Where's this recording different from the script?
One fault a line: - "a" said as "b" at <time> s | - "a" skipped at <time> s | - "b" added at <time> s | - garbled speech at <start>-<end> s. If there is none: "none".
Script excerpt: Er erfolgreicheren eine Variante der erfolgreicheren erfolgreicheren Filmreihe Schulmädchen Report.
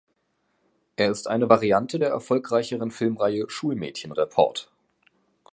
- "erfolgreicheren" said as "ist" at 1.1 s
- "erfolgreicheren" skipped at 2.9 s